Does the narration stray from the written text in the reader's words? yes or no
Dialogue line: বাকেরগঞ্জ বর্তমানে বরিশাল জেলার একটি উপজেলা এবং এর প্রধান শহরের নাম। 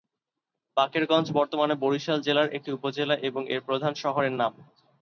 no